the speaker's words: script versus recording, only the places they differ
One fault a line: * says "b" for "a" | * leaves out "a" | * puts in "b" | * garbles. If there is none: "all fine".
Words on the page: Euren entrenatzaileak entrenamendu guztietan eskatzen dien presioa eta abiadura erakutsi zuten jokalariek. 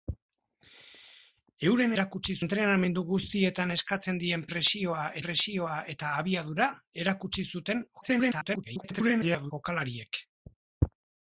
* says "erakutsi" for "entrenatzaileak"
* puts in "presioa"
* garbles